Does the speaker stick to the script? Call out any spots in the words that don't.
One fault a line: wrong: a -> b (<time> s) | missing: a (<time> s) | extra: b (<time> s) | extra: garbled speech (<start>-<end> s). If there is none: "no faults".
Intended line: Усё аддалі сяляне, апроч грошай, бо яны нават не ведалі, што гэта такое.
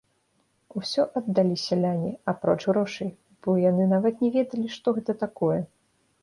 no faults